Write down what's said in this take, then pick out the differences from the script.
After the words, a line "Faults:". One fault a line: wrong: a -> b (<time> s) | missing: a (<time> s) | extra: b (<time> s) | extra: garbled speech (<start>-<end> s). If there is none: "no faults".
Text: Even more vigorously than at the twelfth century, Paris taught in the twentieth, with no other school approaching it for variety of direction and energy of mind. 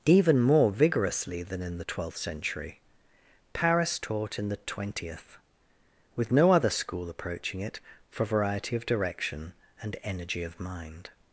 Even more vigorously than in the twelfth century, Paris taught in the twentieth, with no other school approaching it for variety of direction and energy of mind.
Faults:
wrong: at -> in (1.6 s)